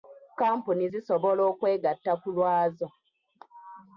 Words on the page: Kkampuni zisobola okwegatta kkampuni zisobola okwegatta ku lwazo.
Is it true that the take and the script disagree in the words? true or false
true